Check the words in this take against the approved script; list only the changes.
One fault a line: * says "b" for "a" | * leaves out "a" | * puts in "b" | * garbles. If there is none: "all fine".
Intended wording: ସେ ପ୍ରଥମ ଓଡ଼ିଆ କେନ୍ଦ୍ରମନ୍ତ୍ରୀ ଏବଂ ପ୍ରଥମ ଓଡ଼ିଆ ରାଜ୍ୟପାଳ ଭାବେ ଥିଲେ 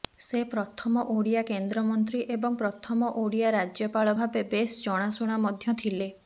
* puts in "ବେଶ୍ ଜଣାଶୁଣା ମଧ୍ୟ"